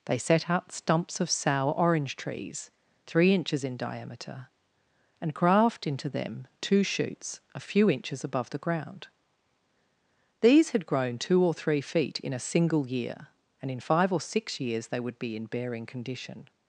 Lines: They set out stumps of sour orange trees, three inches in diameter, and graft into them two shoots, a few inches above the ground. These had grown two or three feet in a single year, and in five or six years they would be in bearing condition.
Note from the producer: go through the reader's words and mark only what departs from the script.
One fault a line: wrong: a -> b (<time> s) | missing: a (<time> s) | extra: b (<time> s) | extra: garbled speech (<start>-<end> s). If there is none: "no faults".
no faults